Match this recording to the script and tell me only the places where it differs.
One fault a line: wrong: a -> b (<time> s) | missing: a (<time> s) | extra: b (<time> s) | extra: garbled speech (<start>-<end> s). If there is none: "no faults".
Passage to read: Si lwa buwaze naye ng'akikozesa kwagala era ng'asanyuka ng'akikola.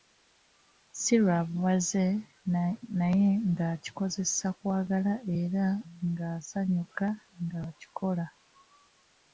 no faults